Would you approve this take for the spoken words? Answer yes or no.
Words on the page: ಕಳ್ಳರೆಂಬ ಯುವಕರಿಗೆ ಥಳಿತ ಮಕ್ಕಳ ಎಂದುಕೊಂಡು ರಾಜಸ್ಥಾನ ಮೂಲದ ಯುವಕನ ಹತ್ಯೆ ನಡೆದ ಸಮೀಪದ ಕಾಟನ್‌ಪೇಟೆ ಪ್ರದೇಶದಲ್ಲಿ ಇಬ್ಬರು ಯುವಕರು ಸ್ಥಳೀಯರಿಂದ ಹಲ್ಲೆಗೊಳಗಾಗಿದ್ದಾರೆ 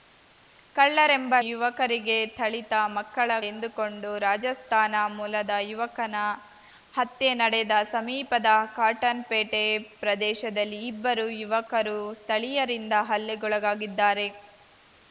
yes